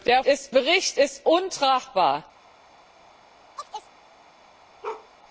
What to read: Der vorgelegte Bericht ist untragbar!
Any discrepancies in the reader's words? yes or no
yes